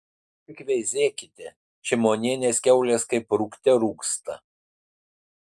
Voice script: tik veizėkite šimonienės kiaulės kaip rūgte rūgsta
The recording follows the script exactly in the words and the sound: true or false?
true